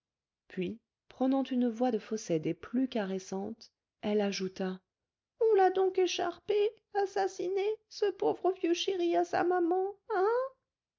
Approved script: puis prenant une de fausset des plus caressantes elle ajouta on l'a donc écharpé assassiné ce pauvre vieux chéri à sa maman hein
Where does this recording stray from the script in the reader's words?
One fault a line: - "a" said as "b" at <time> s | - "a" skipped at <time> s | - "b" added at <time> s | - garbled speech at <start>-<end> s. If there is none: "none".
- "voix" added at 1.7 s